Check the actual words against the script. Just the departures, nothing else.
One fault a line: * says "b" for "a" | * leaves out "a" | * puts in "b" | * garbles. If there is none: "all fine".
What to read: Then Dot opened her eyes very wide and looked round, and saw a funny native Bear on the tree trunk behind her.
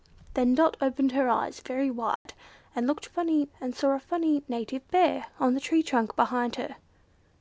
* says "funny" for "round"